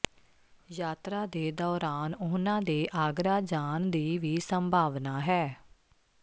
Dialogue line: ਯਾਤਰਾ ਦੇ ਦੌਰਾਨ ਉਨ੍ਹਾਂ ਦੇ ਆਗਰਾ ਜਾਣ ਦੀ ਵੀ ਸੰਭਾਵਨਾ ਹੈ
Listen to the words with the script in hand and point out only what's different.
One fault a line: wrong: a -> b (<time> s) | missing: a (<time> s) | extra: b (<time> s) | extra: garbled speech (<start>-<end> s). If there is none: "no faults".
no faults